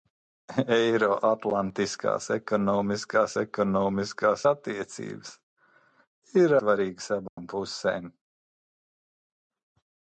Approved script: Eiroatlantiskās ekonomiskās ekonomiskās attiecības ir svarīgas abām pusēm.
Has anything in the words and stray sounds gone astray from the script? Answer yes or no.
yes